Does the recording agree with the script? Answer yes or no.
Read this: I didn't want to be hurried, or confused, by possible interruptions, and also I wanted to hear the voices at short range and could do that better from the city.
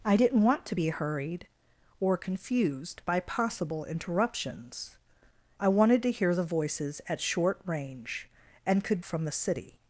no